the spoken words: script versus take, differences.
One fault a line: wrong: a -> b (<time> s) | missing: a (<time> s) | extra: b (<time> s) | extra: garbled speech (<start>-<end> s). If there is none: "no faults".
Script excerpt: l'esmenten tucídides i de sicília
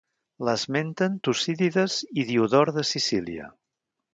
extra: diodor (2.3 s)